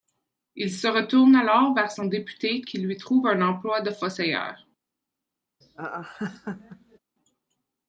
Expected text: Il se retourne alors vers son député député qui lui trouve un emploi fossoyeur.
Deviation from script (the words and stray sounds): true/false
true